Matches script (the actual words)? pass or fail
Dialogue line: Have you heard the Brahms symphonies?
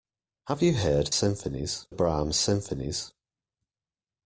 fail